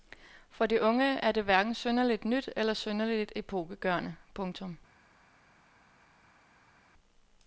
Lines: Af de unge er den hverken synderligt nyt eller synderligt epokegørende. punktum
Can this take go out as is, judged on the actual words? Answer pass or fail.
fail